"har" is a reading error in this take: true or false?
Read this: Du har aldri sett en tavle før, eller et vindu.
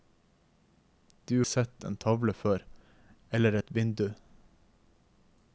true